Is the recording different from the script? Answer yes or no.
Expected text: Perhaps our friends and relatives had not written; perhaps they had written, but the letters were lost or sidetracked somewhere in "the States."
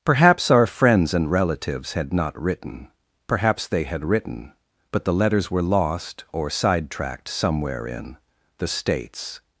no